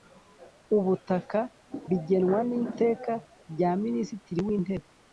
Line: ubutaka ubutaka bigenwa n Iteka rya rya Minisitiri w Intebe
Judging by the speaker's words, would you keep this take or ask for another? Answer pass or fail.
fail